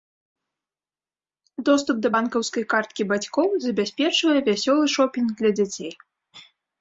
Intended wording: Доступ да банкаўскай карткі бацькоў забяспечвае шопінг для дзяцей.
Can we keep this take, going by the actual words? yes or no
no